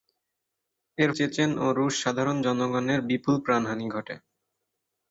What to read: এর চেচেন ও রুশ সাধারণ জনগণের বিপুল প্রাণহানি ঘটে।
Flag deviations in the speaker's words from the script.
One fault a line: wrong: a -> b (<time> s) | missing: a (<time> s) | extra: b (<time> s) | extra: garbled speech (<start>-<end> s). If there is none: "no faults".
no faults